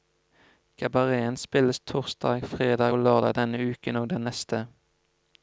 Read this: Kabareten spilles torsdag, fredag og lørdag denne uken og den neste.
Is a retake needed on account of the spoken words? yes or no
no